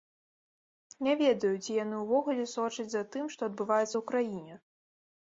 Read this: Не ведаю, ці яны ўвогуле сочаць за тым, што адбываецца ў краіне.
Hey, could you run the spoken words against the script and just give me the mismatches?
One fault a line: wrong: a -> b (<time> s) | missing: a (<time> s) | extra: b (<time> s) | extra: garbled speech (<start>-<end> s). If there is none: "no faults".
no faults